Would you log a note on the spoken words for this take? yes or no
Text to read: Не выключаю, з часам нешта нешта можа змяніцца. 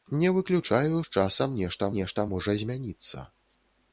no